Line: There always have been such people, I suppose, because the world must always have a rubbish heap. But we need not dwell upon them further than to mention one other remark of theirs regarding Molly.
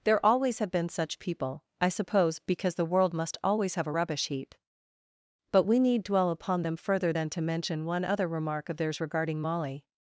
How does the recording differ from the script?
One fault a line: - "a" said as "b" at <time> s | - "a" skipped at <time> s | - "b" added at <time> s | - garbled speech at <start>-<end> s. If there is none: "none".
- "not" skipped at 6.0 s